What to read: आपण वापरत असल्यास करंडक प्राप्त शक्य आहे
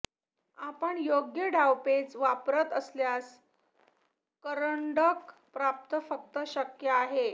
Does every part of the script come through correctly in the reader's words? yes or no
no